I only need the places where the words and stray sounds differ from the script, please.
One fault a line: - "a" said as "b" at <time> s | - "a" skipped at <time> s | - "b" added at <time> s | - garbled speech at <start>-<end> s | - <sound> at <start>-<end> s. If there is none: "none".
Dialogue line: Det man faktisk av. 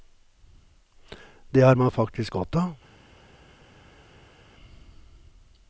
- "har" added at 1.6 s
- "godt" added at 2.3 s